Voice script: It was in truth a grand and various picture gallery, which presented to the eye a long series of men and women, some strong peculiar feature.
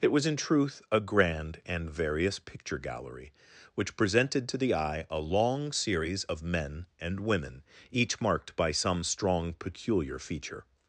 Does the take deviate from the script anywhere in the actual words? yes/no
yes